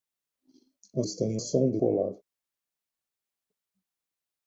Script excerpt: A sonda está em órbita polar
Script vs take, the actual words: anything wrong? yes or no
yes